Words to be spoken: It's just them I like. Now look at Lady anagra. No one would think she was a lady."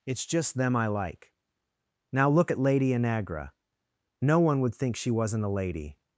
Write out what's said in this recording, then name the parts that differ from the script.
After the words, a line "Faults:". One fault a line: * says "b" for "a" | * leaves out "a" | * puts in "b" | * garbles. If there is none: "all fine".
It's just them I like. Now look at Lady anagra. No one would think she wasn't a lady."
Faults:
* says "wasn't" for "was"